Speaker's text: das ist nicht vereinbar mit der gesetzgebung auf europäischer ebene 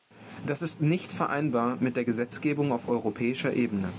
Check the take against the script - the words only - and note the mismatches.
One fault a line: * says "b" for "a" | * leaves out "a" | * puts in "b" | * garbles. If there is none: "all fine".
all fine